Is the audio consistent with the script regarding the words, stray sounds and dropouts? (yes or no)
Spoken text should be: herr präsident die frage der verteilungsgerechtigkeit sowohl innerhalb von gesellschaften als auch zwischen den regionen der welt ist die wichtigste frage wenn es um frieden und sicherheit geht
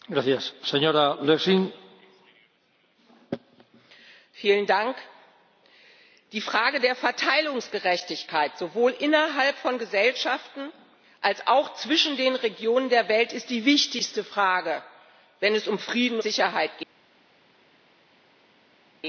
no